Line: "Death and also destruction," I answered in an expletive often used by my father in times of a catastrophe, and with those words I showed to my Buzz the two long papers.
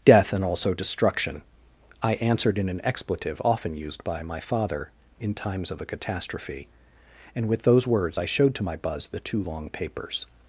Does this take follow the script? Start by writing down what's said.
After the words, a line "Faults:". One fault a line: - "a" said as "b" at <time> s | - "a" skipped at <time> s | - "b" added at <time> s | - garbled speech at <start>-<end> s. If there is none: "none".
"Death and also destruction," I answered in an expletive often used by my father in times of a catastrophe, and with those words I showed to my Buzz the two long papers.
Faults:
none